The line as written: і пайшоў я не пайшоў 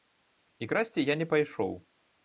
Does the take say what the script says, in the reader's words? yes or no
no